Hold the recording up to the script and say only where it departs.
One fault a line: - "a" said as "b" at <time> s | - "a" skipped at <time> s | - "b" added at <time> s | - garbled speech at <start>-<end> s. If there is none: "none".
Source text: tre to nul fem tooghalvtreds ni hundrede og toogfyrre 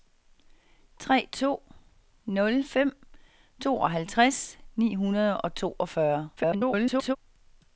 - garbled speech at 6.4-7.2 s